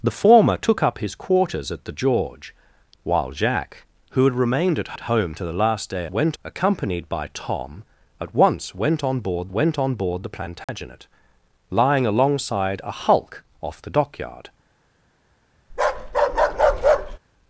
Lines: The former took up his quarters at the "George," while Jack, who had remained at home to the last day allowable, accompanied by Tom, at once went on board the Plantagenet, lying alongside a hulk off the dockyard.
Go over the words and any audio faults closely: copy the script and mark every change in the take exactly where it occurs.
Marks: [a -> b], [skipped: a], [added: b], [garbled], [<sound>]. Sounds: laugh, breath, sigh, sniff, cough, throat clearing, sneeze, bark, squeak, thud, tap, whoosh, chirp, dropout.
The former took up his quarters at the "George," while Jack, who had remained at [added: at] home to the last day [allowable, -> went] accompanied by Tom, at once went on board [added: went on board] the Plantagenet, [dropout] lying alongside a hulk off the dockyard. [bark]